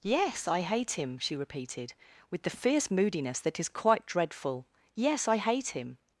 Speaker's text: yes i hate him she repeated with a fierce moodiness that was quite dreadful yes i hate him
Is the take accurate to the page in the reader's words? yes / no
no